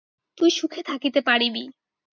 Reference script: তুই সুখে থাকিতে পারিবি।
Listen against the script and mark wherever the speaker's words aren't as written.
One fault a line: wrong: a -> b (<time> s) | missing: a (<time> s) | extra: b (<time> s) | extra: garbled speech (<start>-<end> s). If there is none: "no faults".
no faults